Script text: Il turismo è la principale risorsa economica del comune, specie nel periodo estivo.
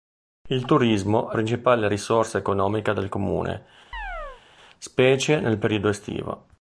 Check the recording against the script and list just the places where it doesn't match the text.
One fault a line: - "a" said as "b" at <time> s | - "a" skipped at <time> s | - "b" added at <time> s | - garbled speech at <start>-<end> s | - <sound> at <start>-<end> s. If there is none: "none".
- "la" skipped at 1.4 s
- chirp at 3.9-4.4 s